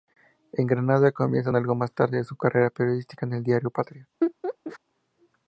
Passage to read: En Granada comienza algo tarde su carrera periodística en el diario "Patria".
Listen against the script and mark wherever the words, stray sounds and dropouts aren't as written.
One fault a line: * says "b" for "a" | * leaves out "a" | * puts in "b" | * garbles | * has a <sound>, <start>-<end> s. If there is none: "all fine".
* puts in "más"
* has a laugh, 4.2-4.8 s